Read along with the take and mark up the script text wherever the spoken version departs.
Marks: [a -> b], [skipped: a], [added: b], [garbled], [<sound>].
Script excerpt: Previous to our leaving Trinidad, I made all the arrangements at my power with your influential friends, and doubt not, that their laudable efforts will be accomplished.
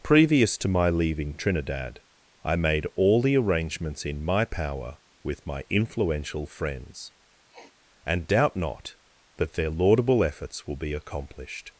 Previous to [our -> my] leaving Trinidad, I made all the arrangements [at -> in] my power with [your -> my] influential friends, [sniff] and doubt not, that their laudable efforts will be accomplished.